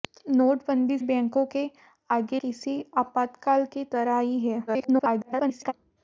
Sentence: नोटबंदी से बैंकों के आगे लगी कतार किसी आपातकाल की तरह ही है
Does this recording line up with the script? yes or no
no